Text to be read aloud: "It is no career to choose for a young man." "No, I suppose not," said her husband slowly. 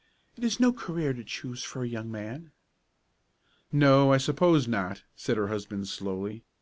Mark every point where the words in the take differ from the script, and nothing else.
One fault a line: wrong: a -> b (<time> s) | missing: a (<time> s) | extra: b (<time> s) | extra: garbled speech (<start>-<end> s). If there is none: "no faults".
no faults